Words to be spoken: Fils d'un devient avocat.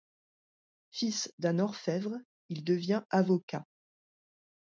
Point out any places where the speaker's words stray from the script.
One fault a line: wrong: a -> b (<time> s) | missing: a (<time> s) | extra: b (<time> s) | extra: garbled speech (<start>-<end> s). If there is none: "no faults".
extra: orfèvre il (1.6 s)